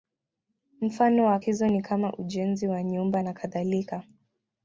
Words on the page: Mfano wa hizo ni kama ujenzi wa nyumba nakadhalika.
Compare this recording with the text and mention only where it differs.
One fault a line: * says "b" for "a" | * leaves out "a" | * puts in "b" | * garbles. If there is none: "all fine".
all fine